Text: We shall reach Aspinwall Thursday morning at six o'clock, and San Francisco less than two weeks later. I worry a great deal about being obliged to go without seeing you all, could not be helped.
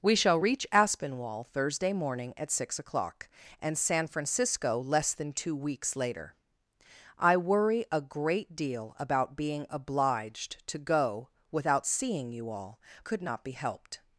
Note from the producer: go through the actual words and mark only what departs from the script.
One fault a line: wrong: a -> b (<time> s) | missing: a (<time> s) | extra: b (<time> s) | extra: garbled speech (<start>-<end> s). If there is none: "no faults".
no faults